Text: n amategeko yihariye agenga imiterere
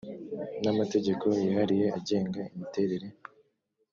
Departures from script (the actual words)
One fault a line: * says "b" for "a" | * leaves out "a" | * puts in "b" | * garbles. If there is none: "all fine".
all fine